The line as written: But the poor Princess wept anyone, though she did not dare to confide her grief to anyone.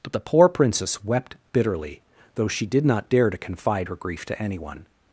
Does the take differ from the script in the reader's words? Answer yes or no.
yes